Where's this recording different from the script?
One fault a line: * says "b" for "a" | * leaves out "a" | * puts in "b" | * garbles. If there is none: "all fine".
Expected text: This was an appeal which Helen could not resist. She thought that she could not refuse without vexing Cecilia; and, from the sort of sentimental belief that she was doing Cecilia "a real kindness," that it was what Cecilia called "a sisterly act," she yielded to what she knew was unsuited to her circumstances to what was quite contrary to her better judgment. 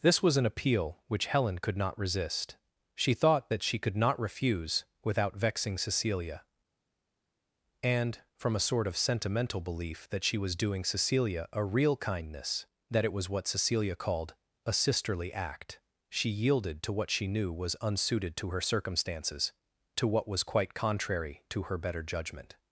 * says "a" for "the"